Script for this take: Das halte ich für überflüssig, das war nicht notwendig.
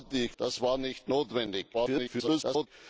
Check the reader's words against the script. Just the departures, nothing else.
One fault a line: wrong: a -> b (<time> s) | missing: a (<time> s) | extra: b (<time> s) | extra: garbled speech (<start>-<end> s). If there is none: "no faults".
missing: für überflüssig (0.3 s)
extra: garbled speech (1.7-2.7 s)